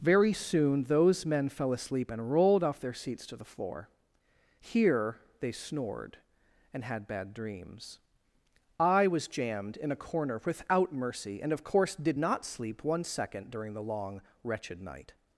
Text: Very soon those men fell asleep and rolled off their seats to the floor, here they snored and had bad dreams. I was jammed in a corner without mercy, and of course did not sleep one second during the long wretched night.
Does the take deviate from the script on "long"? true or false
false